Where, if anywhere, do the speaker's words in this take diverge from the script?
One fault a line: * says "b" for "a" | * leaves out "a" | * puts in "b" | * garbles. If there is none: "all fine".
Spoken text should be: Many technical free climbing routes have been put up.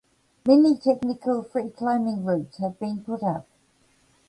all fine